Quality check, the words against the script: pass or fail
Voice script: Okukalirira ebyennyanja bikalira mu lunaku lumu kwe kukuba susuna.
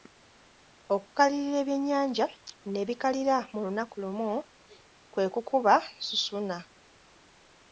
fail